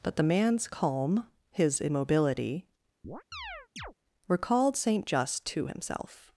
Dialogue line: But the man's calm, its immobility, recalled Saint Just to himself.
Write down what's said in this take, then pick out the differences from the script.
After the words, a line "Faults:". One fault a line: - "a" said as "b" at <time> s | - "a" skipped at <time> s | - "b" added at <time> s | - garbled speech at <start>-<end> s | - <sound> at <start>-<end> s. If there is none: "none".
But the man's calm, his immobility, recalled Saint Just to himself.
Faults:
- "its" said as "his" at 1.5 s
- chirp at 3.0-3.9 s